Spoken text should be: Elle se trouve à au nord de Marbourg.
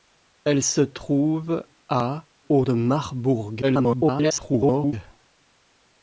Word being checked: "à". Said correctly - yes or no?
yes